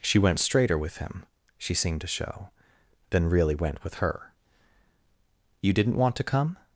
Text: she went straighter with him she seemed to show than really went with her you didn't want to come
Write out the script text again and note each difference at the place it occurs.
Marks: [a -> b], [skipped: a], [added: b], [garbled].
she went straighter with him she seemed to show than really went with her you didn't want to come